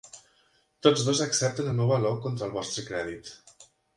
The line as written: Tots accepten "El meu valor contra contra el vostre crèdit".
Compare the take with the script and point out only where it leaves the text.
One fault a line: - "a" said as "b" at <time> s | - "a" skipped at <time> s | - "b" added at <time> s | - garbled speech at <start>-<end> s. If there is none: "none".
- "dos" added at 1.1 s
- "contra" skipped at 2.5 s